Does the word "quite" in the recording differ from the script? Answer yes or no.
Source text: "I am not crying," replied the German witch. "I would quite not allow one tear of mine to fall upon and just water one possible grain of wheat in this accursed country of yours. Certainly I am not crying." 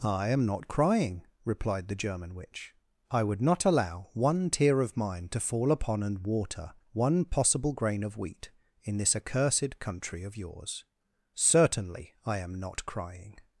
yes